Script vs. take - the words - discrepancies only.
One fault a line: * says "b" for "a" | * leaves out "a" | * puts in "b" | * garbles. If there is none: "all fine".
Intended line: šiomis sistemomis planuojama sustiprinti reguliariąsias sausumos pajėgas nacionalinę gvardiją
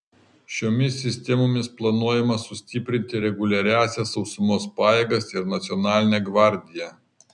* puts in "ir"